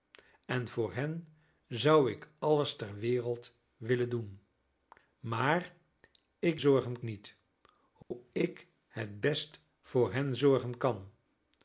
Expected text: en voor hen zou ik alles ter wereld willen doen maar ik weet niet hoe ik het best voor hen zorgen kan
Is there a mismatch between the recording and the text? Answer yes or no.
yes